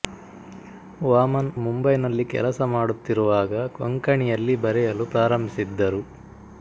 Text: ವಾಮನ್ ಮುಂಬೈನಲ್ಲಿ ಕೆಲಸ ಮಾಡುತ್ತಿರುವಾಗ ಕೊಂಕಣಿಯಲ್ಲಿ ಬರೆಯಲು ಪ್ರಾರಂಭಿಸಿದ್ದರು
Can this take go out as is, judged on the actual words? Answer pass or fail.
pass